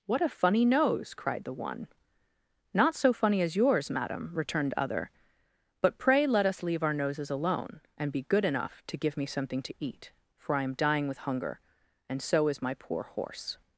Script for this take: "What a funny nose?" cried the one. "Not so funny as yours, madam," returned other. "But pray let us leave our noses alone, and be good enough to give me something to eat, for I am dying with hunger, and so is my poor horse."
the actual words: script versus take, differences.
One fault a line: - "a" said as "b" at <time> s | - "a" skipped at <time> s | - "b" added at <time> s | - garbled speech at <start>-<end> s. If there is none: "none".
none